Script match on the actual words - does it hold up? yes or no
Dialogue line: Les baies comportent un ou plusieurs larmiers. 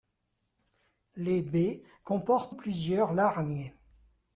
no